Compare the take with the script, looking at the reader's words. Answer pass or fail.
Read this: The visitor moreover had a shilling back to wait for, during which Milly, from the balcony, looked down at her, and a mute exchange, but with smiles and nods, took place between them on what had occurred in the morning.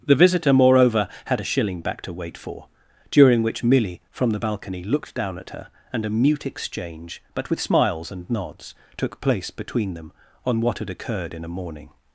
fail